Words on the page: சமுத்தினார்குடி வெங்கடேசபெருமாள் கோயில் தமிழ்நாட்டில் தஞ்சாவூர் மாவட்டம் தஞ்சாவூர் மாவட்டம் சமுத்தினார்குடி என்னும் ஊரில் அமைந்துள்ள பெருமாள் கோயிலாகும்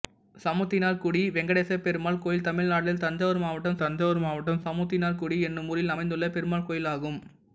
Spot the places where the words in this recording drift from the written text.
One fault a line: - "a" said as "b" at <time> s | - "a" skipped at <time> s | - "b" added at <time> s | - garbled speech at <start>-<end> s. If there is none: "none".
none